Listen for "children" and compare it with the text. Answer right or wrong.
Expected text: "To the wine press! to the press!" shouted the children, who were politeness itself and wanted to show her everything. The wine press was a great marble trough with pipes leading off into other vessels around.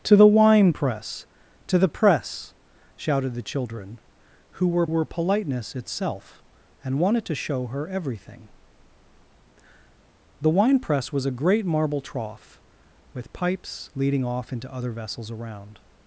right